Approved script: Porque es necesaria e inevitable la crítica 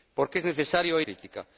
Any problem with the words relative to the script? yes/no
yes